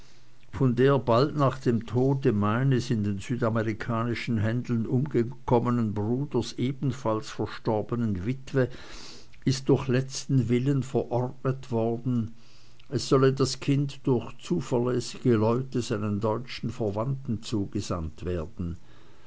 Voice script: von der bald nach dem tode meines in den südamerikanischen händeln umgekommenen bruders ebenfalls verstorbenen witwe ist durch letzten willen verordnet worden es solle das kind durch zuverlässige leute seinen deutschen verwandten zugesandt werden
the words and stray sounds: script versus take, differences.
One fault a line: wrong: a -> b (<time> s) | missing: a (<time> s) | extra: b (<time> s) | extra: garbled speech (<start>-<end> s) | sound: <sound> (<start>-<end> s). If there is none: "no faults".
no faults